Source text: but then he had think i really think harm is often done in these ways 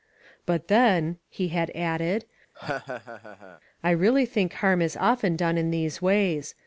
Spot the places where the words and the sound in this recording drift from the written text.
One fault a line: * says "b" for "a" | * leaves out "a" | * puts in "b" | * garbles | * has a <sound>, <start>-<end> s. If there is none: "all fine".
* says "added" for "think"
* has a laugh, 2.5-3.6 s